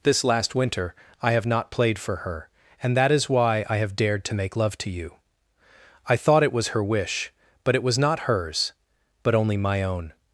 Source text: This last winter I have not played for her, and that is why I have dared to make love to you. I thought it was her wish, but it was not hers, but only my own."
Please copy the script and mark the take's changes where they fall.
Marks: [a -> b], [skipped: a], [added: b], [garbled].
This last winter I have not played for her, and that is why I have dared to make love to you. I thought it was her wish, but it was not hers, but only my own."